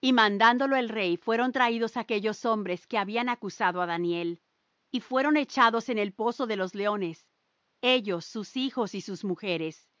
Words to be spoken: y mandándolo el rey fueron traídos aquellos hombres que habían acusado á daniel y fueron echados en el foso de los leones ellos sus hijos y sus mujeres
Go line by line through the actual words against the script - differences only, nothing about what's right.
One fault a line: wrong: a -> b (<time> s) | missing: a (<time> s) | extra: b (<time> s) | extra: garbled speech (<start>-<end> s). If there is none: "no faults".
no faults